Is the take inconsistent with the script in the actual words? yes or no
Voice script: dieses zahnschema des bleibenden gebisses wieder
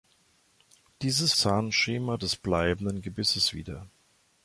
no